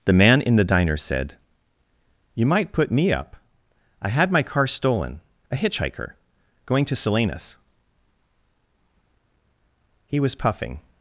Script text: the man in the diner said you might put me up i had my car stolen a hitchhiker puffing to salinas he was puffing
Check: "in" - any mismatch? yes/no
no